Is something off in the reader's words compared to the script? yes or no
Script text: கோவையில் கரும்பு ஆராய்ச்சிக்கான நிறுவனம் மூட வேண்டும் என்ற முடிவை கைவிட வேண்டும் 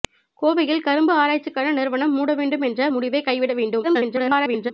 yes